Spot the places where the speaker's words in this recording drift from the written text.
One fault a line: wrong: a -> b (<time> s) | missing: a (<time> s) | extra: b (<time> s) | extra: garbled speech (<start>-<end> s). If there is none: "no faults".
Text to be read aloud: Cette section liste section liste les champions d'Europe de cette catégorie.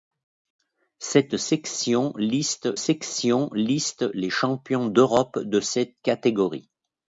no faults